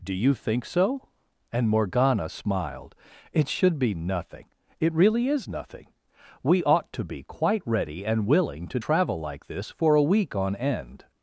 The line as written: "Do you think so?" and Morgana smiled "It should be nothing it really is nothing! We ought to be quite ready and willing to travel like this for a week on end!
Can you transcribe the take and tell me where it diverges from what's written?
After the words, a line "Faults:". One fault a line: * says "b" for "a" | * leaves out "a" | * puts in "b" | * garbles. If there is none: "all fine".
"Do you think so?" and Morgana smiled "It should be nothing it really is nothing! We ought to be quite ready and willing to travel like this for a week on end!
Faults:
all fine